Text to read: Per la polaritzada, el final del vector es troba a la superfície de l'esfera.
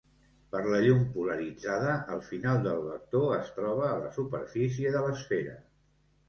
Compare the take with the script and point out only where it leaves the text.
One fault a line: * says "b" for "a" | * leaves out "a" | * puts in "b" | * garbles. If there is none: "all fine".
* puts in "llum"